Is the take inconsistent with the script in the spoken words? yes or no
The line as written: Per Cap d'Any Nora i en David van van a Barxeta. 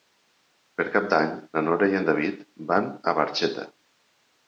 yes